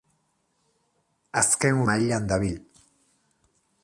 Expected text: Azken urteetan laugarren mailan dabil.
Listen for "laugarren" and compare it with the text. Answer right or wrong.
wrong